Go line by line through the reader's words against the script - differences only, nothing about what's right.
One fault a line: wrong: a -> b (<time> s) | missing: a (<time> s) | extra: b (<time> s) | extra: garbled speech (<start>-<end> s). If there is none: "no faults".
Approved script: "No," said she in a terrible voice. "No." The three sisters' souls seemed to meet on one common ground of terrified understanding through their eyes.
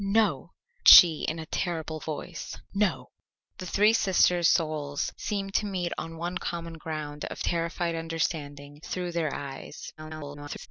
missing: said (0.5 s)
extra: garbled speech (10.0-10.7 s)